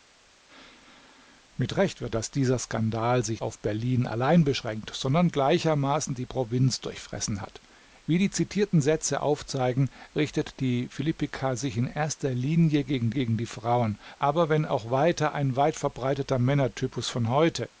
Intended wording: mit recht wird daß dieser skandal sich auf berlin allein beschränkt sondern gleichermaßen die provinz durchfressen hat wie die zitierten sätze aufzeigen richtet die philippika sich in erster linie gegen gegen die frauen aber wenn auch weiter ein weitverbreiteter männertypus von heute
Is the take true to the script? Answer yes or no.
yes